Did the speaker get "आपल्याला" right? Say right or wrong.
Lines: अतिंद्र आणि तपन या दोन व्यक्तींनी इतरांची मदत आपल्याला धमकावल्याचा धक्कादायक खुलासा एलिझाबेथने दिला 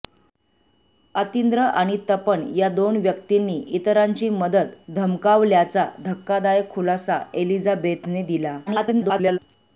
wrong